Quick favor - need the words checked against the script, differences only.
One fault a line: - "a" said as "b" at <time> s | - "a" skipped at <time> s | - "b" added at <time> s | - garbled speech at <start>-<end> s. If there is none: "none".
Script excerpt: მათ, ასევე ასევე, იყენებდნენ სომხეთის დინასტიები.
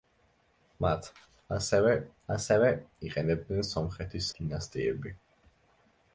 none